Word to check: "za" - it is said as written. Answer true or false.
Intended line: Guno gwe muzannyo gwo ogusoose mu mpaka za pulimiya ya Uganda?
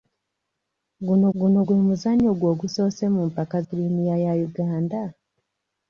false